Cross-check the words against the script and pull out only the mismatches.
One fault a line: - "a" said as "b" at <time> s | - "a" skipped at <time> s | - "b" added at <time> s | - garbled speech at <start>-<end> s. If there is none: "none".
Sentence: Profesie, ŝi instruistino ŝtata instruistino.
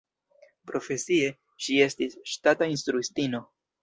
- "instruistino" said as "estis" at 1.9 s